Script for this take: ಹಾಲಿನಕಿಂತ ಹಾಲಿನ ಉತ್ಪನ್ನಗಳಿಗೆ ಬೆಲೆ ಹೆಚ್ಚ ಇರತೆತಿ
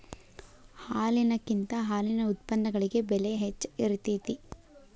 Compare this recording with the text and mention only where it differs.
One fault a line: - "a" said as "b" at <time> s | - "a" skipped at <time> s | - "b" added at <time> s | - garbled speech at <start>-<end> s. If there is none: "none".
none